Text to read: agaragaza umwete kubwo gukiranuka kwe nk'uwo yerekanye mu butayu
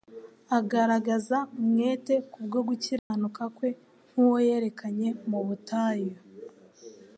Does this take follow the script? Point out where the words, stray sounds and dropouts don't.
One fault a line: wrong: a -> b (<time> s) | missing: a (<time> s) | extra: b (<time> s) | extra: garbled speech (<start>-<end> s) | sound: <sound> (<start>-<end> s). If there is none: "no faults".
sound: dropout (3.0-3.1 s)